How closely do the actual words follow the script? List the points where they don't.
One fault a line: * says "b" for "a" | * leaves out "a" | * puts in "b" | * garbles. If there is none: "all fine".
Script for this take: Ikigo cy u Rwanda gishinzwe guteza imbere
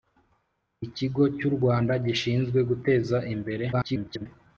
* garbles